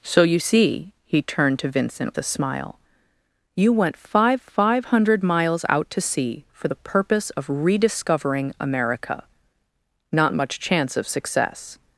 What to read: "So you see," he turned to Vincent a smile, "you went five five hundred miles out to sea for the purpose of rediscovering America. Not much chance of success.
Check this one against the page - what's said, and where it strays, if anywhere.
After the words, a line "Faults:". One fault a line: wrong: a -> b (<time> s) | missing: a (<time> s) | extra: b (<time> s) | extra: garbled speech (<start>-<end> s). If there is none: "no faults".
"So you see," he turned to Vincent a smile, "you went five five hundred miles out to sea for the purpose of rediscovering America. Not much chance of success.
Faults:
no faults